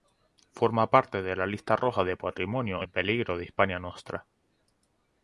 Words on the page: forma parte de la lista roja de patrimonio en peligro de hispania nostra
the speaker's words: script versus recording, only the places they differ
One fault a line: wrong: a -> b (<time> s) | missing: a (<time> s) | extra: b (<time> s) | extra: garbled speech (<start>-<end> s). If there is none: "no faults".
no faults